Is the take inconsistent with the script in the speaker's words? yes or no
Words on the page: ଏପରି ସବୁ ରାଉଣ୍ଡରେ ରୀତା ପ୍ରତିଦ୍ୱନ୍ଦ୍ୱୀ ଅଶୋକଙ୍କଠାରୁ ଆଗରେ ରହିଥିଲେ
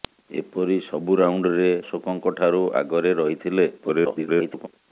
yes